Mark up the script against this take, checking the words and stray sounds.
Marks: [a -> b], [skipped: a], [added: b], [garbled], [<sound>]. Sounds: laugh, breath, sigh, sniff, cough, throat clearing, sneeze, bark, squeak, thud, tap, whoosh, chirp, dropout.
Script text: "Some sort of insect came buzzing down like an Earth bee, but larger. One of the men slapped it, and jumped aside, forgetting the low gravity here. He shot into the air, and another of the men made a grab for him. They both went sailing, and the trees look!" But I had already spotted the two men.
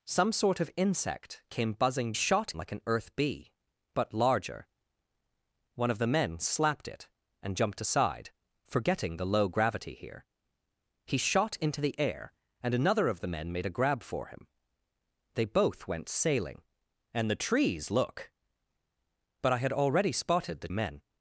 "Some sort of insect came buzzing [down -> shot] like an Earth bee, but larger. One of the men slapped it, and jumped aside, forgetting the low gravity here. He shot into the air, and another of the men made a grab for him. They both went sailing, and the trees look!" But I had already spotted the [skipped: two] men.